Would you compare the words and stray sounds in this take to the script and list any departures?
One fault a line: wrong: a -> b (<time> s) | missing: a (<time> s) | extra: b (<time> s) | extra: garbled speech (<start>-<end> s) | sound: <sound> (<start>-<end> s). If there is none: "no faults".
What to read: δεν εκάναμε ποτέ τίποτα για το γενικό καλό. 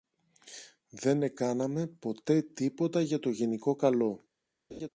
sound: laugh (4.7-4.9 s)